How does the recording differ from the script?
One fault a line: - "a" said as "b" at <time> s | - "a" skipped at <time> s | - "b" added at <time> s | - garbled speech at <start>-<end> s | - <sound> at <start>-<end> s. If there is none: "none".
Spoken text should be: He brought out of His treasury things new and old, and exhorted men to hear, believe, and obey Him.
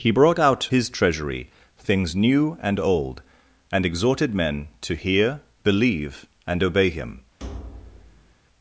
- "of" skipped at 0.7 s
- thud at 7.4-8.3 s